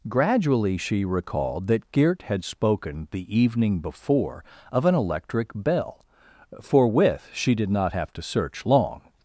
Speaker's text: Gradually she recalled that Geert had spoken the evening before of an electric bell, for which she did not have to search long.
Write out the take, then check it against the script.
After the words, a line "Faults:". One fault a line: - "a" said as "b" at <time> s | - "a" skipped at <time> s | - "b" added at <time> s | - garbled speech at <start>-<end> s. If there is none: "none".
Gradually she recalled that Geert had spoken the evening before of an electric bell, for with she did not have to search long.
Faults:
- "which" said as "with" at 6.9 s